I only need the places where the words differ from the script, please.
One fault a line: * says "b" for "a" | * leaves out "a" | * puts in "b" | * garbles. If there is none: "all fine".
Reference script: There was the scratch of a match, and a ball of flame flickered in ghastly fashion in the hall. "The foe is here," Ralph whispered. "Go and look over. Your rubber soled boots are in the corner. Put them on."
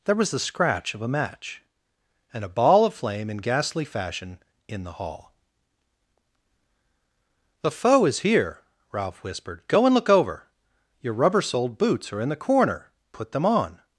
* leaves out "flickered"